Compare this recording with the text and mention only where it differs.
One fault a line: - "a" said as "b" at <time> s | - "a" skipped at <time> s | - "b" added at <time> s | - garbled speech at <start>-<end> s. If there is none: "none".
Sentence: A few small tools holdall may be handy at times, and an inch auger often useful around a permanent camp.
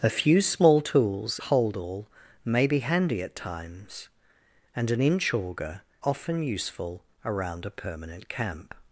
none